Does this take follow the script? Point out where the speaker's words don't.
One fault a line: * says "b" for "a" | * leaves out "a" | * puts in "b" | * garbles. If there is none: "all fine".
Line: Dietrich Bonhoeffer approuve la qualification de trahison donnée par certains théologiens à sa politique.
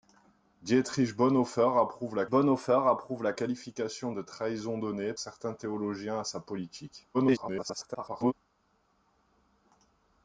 * puts in "Bonhoeffer approuve la"
* leaves out "par"
* garbles